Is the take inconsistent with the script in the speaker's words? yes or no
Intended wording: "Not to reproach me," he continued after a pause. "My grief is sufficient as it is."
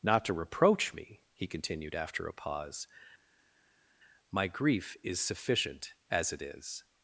no